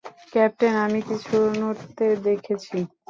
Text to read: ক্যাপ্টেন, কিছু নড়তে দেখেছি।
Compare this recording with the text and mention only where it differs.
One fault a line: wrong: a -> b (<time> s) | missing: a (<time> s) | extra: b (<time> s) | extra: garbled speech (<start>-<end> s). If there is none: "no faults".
extra: আমি (0.8 s)